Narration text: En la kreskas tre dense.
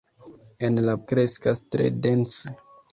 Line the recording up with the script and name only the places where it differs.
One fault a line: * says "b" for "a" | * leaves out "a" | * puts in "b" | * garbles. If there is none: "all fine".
all fine